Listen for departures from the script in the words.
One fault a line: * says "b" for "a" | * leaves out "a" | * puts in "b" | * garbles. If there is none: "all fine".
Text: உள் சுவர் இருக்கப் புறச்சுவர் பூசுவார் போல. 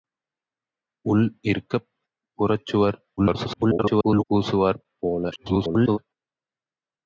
* leaves out "சுவர்"
* garbles
* garbles